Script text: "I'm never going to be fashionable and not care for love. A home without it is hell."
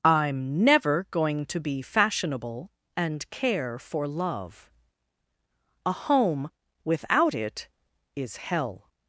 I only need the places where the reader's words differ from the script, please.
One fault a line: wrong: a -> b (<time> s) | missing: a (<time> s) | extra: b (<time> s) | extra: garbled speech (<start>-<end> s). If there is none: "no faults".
missing: not (3.3 s)